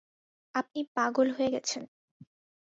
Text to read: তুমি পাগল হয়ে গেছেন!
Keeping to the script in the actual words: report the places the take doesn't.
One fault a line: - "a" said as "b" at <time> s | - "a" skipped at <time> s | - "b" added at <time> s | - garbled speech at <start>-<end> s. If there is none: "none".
- "তুমি" said as "আপনি" at 0.6 s